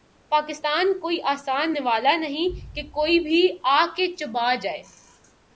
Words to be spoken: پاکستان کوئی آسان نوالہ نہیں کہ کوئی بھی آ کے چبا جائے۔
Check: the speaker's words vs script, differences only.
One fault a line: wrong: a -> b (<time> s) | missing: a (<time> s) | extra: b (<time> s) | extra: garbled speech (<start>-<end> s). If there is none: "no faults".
no faults